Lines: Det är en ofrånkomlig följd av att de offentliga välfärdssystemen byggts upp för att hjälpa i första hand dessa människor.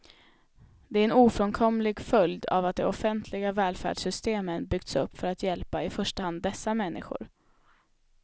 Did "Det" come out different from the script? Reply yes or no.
no